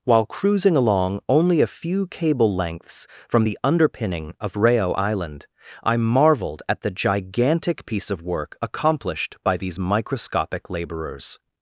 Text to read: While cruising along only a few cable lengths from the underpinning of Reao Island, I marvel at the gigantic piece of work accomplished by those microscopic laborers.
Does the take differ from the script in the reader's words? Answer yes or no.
yes